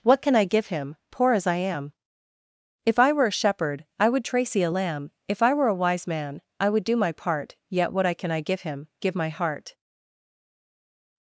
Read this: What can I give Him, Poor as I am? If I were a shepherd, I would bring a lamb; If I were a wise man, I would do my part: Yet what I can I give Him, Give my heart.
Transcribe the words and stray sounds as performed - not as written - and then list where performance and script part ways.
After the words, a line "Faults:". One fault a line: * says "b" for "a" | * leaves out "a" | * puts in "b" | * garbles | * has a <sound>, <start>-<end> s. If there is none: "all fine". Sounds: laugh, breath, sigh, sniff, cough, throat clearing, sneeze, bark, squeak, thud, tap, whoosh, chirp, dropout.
What can I give Him, Poor as I am? If I were a shepherd, I would tracy a lamb; If I were a wise man, I would do my part: Yet what I can I give Him, Give my heart.
Faults:
* says "tracy" for "bring"